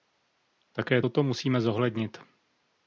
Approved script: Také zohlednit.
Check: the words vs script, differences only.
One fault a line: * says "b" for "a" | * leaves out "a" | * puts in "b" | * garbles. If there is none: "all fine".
* puts in "toto musíme"